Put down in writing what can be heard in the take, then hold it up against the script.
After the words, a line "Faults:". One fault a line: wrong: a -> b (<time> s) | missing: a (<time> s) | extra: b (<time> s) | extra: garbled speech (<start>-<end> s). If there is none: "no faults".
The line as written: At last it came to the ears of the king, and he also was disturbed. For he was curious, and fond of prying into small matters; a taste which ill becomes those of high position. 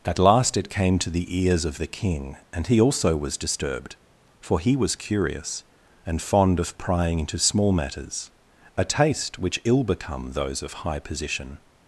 At last it came to the ears of the king, and he also was disturbed. For he was curious, and fond of prying into small matters; a taste which ill become those of high position.
Faults:
wrong: becomes -> become (9.8 s)